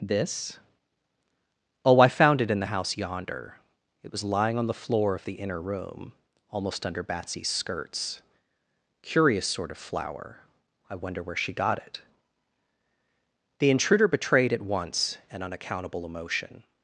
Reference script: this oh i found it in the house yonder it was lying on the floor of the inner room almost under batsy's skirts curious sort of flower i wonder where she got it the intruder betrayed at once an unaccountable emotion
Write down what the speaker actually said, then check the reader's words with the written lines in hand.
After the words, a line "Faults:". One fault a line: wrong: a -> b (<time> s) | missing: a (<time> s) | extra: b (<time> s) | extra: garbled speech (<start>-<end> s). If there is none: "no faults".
this oh i found it in the house yonder it was lying on the floor of the inner room almost under batsy's skirts curious sort of flower i wonder where she got it the intruder betrayed at once an unaccountable emotion
Faults:
no faults